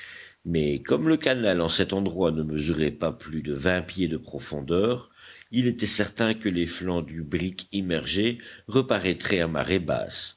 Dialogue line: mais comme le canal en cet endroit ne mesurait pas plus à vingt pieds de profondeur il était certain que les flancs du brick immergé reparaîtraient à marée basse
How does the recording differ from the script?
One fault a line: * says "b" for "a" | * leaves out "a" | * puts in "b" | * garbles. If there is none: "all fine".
* says "de" for "à"